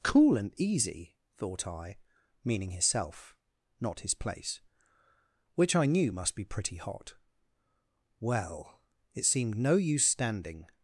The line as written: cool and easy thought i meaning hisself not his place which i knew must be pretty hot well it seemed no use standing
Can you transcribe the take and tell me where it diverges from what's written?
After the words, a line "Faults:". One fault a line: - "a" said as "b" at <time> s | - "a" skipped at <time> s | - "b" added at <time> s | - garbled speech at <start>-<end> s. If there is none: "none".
cool and easy thought i meaning hisself not his place which i knew must be pretty hot well it seemed no use standing
Faults:
none